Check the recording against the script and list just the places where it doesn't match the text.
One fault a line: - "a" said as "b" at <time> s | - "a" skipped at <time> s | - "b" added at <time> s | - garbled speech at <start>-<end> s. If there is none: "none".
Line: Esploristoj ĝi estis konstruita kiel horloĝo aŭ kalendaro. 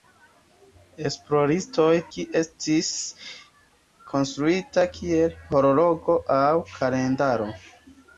none